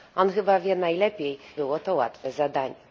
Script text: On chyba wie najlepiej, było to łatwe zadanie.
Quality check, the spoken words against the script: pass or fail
pass